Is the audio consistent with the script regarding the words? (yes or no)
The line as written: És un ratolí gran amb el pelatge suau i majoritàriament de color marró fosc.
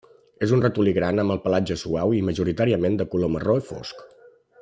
yes